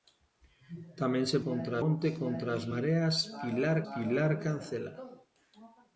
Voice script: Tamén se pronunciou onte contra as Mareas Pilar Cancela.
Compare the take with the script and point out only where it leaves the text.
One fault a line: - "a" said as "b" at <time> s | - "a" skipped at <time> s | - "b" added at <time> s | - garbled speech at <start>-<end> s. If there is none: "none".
- "pronunciou" said as "contra" at 1.5 s
- "Pilar" added at 3.9 s